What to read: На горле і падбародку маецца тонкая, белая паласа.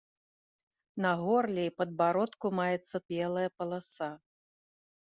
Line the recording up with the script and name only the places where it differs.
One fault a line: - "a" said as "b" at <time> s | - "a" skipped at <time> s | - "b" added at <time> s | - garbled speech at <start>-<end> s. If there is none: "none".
- "тонкая" skipped at 3.0 s